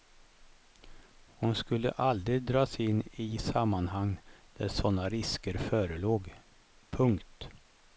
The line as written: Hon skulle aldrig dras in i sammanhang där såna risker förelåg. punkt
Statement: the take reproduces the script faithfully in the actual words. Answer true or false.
true